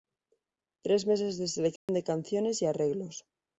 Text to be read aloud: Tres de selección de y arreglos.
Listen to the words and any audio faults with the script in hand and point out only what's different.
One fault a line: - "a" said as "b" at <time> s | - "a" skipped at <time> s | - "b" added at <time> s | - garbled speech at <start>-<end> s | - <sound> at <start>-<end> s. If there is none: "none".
- "meses" added at 1.1 s
- dropout at 1.8-1.9 s
- "canciones" added at 2.0 s